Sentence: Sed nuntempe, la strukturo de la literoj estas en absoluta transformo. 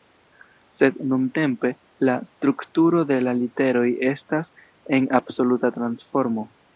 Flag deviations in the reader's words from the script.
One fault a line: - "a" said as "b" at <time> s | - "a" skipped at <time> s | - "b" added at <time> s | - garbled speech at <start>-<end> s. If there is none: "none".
none